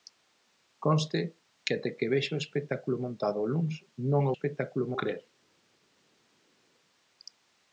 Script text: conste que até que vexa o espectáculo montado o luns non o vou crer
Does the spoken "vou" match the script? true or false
false